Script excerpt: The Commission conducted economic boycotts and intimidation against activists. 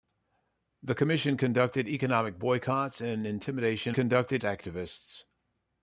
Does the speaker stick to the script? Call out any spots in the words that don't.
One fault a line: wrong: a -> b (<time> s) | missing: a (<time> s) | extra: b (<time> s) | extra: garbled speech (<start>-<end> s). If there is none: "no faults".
wrong: against -> conducted (3.9 s)